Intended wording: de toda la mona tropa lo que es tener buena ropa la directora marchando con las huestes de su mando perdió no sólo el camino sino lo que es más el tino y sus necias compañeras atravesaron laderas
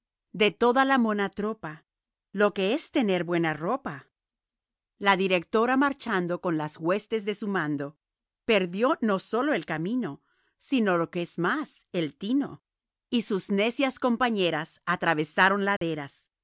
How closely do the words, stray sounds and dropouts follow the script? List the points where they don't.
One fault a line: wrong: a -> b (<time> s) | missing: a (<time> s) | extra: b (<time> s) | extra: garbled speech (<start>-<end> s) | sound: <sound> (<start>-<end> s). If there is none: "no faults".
sound: dropout (15.8-15.8 s)